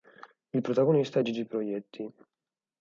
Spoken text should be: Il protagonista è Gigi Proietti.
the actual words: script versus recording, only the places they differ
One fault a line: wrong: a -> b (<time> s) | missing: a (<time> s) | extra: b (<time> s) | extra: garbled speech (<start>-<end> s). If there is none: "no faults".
no faults